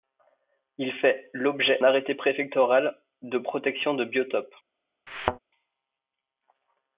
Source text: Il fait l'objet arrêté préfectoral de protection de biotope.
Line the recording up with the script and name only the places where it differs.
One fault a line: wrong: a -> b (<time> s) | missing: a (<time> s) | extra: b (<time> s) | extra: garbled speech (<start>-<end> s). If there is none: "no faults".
no faults